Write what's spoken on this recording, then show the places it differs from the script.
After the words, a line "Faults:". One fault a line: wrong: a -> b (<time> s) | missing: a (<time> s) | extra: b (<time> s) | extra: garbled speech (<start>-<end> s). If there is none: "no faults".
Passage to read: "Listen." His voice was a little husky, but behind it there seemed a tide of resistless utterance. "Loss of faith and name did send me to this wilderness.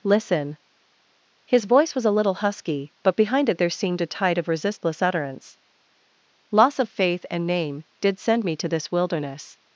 "Listen." His voice was a little husky, but behind it there seemed a tide of resistless utterance. "Loss of faith and name did send me to this wilderness.
Faults:
no faults